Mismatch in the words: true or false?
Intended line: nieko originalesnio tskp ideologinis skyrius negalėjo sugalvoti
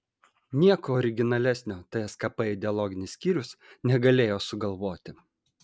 false